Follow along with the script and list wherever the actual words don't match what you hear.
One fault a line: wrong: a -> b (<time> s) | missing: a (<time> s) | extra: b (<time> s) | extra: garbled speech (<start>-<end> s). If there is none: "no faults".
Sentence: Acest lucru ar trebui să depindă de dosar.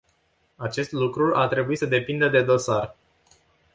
no faults